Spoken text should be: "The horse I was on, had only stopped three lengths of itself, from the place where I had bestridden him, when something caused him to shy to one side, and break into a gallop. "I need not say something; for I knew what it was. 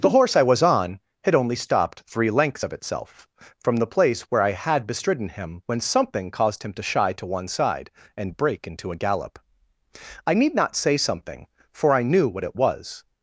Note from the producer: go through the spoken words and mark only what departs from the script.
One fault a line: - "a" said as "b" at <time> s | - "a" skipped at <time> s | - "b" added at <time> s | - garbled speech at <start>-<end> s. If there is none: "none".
none